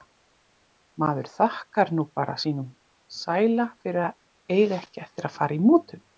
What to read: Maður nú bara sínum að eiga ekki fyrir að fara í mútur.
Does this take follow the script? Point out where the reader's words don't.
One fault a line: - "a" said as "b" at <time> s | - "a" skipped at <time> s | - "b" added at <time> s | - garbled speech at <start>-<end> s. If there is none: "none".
- "þakkar" added at 1.3 s
- "sæla fyrir" added at 3.2 s
- "fyrir" said as "eftir" at 5.0 s